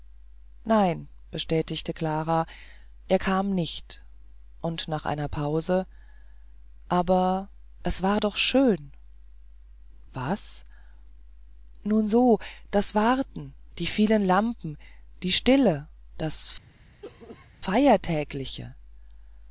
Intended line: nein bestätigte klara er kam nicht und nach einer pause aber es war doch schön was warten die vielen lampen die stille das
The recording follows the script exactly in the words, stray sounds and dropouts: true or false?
false